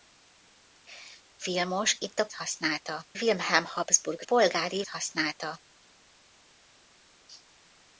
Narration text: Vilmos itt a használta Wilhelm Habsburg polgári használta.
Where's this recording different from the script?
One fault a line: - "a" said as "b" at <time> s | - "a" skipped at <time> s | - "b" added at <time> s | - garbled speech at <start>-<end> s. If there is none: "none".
none